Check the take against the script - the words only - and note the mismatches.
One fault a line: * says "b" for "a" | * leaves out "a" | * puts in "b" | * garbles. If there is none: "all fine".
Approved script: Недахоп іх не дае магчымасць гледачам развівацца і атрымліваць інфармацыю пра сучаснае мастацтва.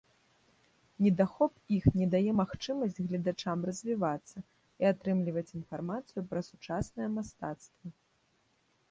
all fine